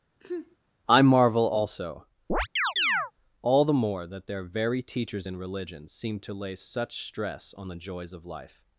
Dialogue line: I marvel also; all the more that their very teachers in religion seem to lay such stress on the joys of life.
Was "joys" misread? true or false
false